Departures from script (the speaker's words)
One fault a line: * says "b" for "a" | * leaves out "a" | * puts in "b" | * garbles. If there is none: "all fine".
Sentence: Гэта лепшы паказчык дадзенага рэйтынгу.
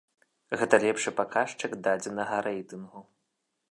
all fine